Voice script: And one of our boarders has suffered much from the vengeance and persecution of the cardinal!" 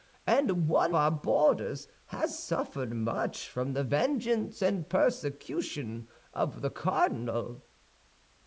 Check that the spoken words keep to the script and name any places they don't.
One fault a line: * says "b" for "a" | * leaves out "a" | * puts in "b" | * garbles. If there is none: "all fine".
* leaves out "of"